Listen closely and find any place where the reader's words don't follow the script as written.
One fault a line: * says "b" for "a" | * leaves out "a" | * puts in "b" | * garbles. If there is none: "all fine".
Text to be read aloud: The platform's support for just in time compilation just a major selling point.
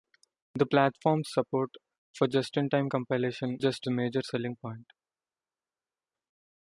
all fine